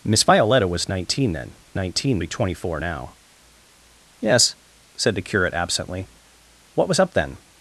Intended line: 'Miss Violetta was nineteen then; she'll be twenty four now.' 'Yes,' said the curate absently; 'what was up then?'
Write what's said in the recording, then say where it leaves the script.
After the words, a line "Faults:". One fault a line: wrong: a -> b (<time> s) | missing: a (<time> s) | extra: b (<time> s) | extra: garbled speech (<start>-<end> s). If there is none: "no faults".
'Miss Violetta was nineteen then; nineteen be twenty four now.' 'Yes,' said the curate absently; 'what was up then?'
Faults:
wrong: she'll -> nineteen (1.8 s)